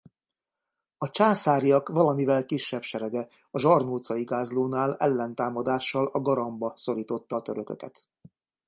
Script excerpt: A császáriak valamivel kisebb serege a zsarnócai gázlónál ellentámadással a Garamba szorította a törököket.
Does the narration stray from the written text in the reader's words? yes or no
no